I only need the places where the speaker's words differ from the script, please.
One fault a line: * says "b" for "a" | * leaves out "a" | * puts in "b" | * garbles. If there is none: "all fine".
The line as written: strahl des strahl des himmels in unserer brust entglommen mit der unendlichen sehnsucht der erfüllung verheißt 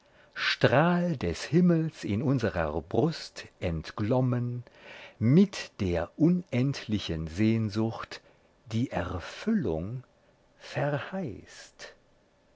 * leaves out "strahl des"
* says "die" for "der"